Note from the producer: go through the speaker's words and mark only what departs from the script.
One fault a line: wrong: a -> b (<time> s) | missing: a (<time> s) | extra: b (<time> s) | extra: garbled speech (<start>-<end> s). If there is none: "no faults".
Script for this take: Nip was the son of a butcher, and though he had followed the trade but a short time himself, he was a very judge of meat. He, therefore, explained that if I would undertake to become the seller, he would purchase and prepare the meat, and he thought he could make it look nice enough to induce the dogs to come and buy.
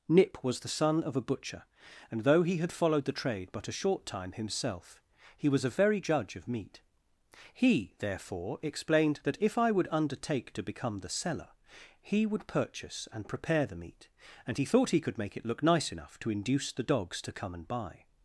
no faults